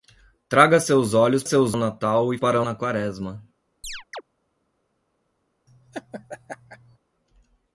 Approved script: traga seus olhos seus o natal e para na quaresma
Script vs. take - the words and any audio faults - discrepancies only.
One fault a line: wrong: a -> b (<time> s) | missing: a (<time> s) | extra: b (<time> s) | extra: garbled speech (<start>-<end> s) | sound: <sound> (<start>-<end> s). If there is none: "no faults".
sound: chirp (3.8-4.2 s)
sound: laugh (5.7-7.0 s)